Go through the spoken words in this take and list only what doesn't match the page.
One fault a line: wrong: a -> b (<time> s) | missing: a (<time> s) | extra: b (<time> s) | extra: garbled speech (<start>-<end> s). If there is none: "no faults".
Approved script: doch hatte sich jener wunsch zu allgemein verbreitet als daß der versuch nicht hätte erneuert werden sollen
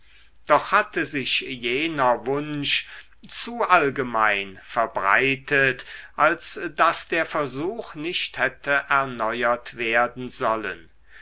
no faults